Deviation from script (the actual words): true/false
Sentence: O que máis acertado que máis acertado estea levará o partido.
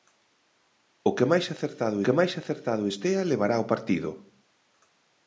false